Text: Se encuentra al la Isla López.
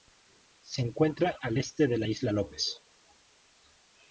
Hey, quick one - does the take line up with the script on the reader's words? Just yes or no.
no